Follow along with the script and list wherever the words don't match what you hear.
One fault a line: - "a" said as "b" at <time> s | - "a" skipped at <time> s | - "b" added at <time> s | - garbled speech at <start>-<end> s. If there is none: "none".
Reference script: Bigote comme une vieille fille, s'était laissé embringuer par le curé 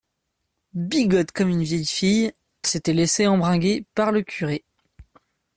none